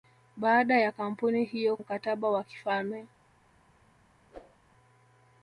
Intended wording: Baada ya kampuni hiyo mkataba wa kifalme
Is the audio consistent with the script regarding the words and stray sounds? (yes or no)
no